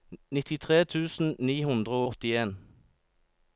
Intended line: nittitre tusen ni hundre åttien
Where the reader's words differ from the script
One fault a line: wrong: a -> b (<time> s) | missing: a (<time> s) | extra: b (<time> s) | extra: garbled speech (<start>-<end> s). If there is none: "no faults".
no faults